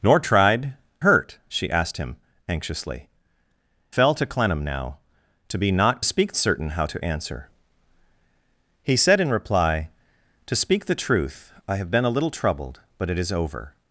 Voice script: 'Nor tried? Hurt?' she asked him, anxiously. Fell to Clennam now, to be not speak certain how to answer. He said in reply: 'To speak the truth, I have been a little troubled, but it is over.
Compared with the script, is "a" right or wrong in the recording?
right